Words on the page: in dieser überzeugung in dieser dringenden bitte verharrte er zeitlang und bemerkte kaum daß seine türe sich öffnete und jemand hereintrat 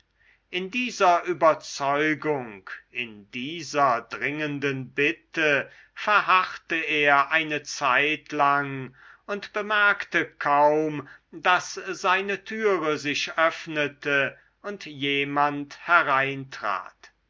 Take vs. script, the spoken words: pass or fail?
fail